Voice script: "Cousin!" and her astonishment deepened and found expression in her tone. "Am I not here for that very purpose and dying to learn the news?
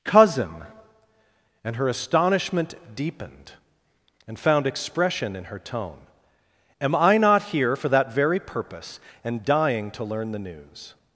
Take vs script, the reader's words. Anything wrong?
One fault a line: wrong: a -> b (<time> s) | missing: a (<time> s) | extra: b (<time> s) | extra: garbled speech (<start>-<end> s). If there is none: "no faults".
no faults